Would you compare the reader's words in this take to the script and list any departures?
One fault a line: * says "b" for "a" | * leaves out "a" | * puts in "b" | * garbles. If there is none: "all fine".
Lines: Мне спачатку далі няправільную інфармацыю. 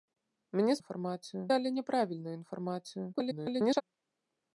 * says "інфармацыю" for "спачатку"
* garbles